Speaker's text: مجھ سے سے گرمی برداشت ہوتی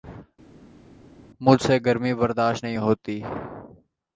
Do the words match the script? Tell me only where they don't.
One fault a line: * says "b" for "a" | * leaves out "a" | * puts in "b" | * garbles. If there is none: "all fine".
* leaves out "سے"
* puts in "نہیں"